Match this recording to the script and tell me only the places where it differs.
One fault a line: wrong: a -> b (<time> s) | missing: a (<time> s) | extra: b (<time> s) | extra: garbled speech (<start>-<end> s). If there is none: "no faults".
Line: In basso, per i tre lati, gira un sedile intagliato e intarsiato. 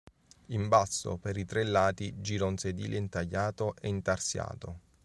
no faults